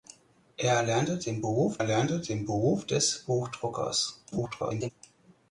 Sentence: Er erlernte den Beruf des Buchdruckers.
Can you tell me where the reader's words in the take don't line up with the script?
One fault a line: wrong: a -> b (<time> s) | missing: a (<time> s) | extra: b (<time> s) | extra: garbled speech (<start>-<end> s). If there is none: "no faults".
extra: erlernte den Beruf (1.8 s)
extra: garbled speech (4.3-4.9 s)